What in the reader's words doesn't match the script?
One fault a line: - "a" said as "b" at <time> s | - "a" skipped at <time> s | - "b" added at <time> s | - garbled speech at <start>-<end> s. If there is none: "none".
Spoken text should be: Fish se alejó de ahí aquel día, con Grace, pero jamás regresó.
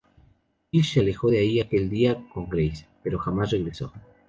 none